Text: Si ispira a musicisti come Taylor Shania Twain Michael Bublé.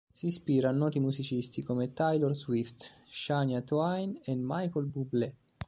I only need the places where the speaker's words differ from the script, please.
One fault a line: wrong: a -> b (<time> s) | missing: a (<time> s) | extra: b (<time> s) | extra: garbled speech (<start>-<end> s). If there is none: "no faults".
extra: noti (0.7 s)
extra: Swift (2.4 s)
extra: e (4.2 s)